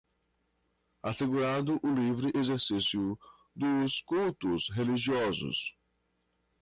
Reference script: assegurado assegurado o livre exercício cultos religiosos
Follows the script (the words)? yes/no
no